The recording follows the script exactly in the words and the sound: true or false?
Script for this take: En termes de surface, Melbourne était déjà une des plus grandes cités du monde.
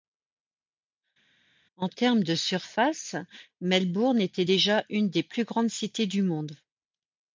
true